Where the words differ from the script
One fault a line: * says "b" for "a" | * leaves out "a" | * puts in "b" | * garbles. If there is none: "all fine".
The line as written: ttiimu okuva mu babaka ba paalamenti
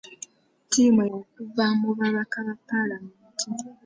all fine